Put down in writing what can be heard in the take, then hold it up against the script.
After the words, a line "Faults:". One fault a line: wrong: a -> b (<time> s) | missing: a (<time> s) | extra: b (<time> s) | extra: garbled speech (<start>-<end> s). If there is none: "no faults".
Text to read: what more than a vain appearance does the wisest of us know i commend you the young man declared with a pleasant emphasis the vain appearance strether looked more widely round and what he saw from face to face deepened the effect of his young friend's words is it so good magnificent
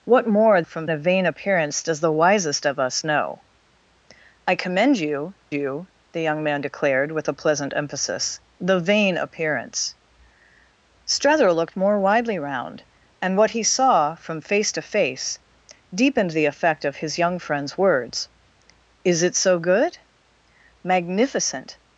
what more from a vain appearance does the wisest of us know i commend you you the young man declared with a pleasant emphasis the vain appearance strether looked more widely round and what he saw from face to face deepened the effect of his young friend's words is it so good magnificent
Faults:
wrong: than -> from (0.6 s)
extra: you (5.5 s)